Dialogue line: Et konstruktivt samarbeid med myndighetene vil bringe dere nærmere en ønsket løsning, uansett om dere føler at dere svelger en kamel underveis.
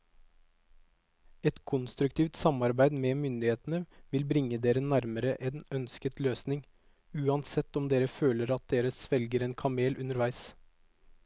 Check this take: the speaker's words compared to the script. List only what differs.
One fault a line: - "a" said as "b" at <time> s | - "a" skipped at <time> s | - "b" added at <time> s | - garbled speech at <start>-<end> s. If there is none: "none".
none